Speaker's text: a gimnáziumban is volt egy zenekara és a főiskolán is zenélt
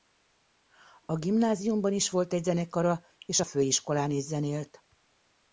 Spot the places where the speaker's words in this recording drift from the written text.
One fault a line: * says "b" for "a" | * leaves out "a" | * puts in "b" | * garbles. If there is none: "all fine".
all fine